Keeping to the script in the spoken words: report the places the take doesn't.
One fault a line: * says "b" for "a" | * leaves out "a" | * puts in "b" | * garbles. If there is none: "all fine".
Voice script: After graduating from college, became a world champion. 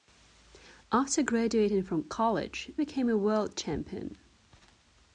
all fine